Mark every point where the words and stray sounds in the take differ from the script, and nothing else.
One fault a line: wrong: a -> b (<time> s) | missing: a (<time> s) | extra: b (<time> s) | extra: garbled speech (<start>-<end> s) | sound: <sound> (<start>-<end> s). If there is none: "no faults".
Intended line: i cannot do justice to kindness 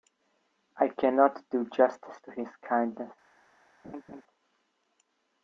extra: his (2.3 s)
sound: laugh (3.8-4.2 s)